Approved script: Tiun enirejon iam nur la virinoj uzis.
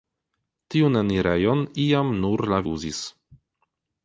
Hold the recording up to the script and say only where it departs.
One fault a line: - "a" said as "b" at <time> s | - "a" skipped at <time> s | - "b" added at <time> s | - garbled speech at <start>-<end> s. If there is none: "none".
- "virinoj" skipped at 2.6 s